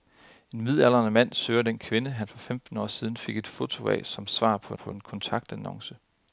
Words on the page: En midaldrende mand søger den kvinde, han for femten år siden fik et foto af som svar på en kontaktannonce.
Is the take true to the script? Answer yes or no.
no